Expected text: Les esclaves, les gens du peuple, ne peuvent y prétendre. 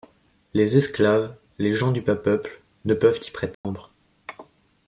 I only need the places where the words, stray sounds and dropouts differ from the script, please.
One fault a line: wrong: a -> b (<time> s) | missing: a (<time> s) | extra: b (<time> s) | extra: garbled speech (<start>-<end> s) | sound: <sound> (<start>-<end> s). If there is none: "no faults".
extra: bas (2.0 s)
sound: dropout (3.5-3.6 s)